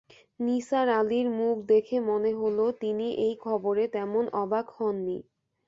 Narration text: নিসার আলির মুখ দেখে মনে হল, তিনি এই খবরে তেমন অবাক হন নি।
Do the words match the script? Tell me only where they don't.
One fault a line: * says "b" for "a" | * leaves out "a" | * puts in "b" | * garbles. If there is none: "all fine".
all fine